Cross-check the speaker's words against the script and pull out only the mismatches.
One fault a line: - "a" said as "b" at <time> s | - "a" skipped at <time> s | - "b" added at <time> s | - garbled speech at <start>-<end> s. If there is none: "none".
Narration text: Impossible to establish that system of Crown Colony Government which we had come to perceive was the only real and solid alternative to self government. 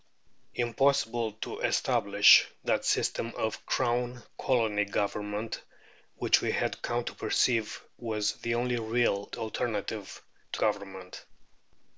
- "and solid" skipped at 9.3 s
- "self" skipped at 10.6 s